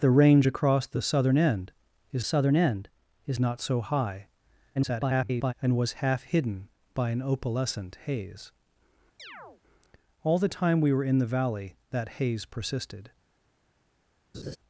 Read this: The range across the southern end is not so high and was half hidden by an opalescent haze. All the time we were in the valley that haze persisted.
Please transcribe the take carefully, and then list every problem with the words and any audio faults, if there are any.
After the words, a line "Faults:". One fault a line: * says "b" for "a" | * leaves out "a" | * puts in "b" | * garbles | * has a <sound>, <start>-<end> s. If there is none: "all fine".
The range across the southern end is southern end is not so high [garbled] and was half hidden by an opalescent haze. All the time we were in the valley that haze persisted.
Faults:
* puts in "southern end is"
* garbles
* has a chirp, 9.2-9.6 s
* has a laugh, 14.3-14.6 s